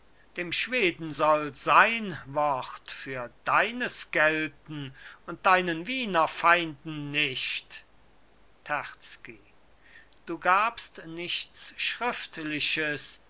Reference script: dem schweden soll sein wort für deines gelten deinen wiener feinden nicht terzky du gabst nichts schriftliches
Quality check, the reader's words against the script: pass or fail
fail